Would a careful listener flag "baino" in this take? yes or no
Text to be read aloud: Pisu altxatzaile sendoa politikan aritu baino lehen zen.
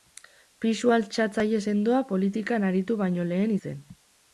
no